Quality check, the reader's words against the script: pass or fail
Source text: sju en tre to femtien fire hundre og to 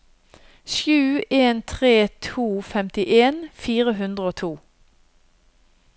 pass